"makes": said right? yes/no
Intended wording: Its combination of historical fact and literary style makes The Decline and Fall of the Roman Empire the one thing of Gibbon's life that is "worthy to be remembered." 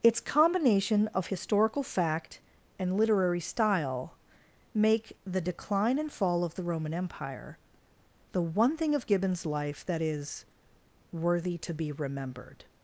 no